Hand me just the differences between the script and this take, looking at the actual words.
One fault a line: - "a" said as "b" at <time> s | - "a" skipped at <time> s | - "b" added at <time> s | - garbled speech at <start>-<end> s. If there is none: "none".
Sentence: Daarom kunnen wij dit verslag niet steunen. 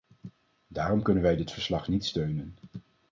none